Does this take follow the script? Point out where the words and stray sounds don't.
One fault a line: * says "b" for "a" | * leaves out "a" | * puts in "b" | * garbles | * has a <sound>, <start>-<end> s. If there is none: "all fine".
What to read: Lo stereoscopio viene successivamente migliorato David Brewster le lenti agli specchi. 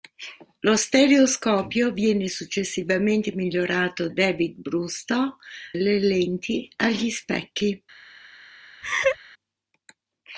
* has a laugh, 8.8-9.2 s